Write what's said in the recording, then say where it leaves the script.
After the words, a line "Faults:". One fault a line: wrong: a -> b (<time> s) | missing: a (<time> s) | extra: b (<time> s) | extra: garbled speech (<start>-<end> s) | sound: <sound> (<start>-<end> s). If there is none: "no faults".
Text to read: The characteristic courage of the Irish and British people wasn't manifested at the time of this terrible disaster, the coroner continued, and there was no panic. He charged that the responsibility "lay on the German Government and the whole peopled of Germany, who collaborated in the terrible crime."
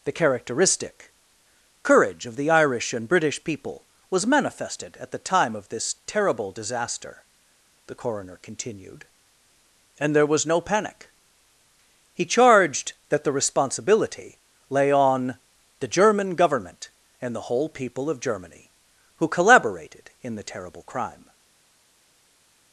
The characteristic courage of the Irish and British people was manifested at the time of this terrible disaster, the coroner continued, and there was no panic. He charged that the responsibility "lay on the German Government and the whole people of Germany, who collaborated in the terrible crime."
Faults:
wrong: wasn't -> was (4.1 s)
wrong: peopled -> people (17.7 s)